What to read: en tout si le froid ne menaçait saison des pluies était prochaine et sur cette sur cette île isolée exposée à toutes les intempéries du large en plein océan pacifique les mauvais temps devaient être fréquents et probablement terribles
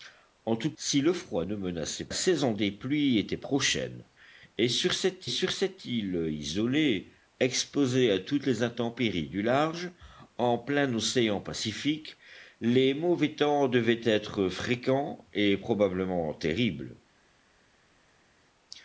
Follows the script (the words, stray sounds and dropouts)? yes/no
yes